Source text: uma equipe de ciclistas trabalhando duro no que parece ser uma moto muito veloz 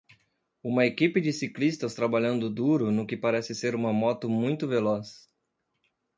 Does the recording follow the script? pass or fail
pass